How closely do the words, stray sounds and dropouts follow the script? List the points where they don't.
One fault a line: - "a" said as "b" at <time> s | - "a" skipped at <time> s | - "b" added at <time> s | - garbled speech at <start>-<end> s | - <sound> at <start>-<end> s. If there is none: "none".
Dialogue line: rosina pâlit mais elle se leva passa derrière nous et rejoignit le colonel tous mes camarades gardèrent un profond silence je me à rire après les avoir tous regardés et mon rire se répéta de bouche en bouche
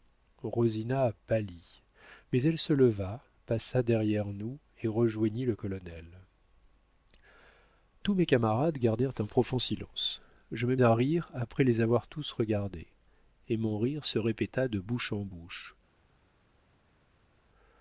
none